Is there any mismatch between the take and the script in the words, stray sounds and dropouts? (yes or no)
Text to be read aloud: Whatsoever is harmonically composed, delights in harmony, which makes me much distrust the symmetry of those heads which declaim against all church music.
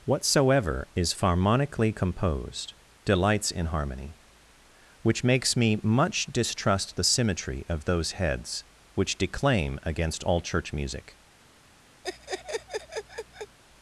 yes